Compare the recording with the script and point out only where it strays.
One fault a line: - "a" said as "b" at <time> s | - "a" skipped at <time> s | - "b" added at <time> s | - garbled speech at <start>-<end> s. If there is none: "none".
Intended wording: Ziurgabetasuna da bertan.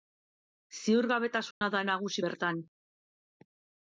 - "nagusi" added at 1.9 s